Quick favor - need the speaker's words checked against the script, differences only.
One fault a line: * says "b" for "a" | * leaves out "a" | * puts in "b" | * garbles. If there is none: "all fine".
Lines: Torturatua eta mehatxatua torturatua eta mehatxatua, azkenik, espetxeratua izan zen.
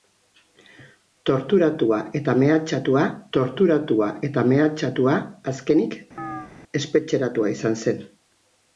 all fine